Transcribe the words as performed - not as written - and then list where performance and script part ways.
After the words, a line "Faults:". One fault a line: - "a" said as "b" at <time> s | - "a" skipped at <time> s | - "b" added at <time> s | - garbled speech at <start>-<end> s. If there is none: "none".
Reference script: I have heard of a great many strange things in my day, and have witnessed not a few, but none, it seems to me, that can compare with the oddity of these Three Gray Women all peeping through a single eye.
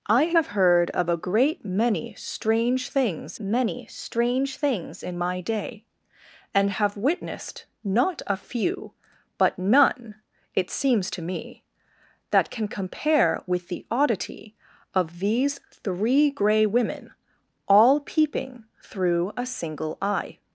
I have heard of a great many strange things many strange things in my day, and have witnessed not a few, but none, it seems to me, that can compare with the oddity of these Three Gray Women all peeping through a single eye.
Faults:
- "many strange things" added at 3.4 s